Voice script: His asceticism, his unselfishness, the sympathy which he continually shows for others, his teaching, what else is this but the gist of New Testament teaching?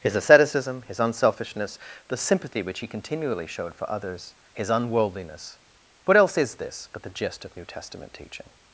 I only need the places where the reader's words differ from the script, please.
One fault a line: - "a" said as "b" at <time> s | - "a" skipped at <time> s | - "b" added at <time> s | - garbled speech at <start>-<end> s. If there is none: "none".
- "shows" said as "showed" at 3.5 s
- "teaching" said as "unworldliness" at 4.7 s